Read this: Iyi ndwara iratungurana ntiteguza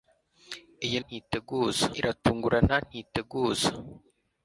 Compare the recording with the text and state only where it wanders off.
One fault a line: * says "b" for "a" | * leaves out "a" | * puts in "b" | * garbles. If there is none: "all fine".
* says "ntiteguza" for "ndwara"